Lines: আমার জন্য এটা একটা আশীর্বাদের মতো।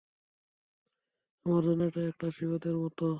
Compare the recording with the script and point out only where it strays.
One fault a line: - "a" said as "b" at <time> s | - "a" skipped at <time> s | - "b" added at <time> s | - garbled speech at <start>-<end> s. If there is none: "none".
none